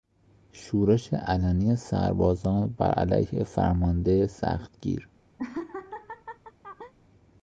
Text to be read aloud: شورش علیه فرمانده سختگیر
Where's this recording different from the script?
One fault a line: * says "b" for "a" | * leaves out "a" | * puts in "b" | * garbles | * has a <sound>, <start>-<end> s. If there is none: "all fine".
* puts in "علنی سربازان بر"
* has a laugh, 5.4-6.9 s